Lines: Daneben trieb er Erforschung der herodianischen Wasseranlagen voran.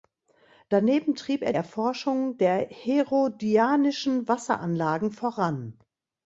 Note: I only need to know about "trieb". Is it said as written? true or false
true